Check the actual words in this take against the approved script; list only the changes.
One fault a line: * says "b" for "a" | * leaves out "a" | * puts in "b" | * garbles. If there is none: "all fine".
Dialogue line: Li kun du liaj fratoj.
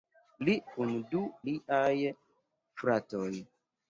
all fine